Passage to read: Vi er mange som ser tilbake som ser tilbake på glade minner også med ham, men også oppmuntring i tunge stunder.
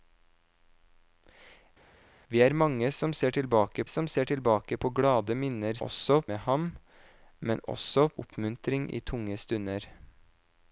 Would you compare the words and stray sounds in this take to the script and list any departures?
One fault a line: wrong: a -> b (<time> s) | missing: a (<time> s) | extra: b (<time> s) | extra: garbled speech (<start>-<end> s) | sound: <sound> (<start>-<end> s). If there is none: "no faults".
no faults